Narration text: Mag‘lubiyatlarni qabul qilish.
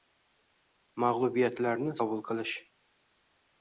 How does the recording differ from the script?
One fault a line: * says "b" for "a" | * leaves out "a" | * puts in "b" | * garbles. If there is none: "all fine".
all fine